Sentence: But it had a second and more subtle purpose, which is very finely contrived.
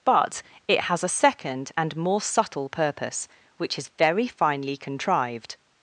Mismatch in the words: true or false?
true